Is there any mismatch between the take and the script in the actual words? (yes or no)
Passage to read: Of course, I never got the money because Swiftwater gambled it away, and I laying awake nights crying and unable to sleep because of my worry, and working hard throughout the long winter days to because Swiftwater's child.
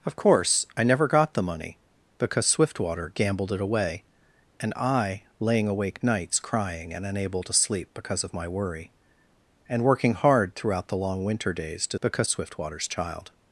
no